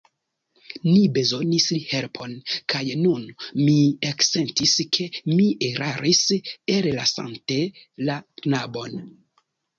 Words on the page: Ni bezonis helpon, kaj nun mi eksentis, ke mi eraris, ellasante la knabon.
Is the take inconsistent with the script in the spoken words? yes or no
no